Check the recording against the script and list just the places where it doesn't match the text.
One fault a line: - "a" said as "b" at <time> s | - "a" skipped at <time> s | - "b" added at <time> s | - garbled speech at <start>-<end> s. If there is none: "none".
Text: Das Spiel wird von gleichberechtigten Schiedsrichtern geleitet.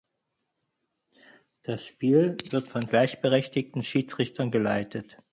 none